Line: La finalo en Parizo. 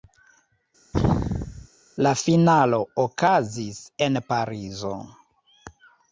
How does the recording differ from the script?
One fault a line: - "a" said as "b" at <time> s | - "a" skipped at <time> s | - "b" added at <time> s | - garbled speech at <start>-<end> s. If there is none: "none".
- "okazis" added at 3.1 s